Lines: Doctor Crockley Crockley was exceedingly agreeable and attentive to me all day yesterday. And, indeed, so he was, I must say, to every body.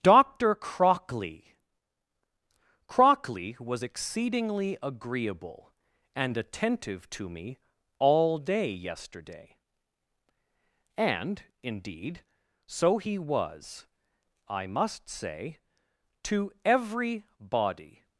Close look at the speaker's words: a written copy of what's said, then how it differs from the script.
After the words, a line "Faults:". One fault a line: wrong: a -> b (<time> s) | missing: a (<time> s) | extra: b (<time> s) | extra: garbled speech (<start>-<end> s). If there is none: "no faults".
Doctor Crockley Crockley was exceedingly agreeable and attentive to me all day yesterday. And, indeed, so he was, I must say, to every body.
Faults:
no faults